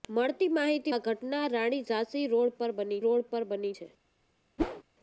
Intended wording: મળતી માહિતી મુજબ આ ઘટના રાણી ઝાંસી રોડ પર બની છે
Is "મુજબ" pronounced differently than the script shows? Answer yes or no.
yes